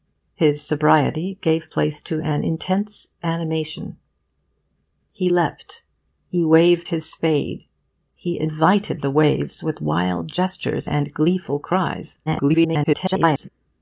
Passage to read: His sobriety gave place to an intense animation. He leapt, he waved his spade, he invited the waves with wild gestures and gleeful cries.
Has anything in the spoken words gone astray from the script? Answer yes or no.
yes